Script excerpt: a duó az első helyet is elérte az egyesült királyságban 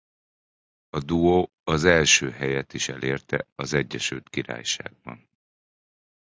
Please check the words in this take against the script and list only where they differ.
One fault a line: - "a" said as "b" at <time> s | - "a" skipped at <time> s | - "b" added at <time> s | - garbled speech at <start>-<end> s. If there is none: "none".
none